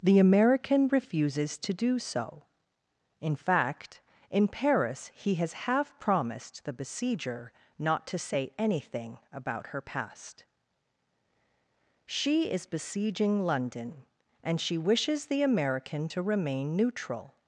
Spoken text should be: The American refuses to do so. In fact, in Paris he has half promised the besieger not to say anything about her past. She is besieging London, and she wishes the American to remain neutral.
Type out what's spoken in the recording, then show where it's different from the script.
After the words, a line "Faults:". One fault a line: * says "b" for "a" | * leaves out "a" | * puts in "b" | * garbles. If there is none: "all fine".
The American refuses to do so. In fact, in Paris he has half promised the besieger not to say anything about her past. She is besieging London, and she wishes the American to remain neutral.
Faults:
all fine